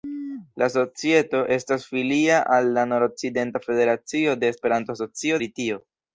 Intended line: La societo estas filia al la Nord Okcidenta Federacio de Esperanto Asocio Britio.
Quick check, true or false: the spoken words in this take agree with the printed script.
true